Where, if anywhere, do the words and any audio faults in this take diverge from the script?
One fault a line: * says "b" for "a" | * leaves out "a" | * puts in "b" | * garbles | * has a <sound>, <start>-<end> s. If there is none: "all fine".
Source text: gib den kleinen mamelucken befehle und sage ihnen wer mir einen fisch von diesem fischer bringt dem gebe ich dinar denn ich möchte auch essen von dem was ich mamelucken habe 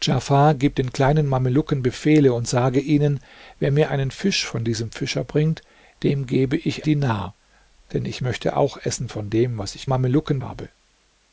all fine